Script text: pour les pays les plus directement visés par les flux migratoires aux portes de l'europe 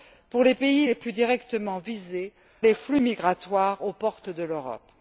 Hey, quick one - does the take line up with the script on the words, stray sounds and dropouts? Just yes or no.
no